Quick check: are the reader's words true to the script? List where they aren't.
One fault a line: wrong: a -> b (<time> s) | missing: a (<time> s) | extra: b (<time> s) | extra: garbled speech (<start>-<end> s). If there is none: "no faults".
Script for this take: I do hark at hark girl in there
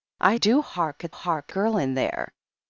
no faults